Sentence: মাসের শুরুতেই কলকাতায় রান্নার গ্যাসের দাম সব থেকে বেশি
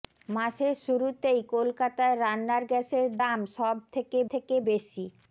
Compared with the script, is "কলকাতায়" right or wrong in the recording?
right